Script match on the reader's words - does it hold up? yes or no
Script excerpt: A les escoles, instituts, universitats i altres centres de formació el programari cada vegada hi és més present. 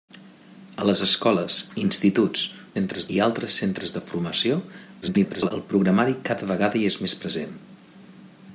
no